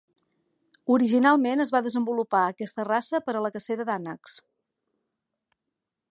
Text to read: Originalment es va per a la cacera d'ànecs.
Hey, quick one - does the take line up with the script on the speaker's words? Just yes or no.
no